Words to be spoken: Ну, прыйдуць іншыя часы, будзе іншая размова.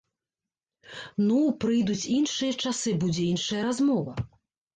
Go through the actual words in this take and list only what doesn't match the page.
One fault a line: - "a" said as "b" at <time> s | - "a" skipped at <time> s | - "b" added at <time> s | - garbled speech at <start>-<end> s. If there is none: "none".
none